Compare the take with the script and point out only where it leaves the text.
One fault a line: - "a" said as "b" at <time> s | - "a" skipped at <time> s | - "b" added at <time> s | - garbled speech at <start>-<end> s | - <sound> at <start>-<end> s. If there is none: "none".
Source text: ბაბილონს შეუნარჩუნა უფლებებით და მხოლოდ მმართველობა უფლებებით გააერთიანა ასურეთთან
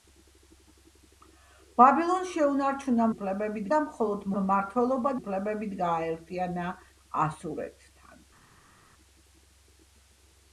none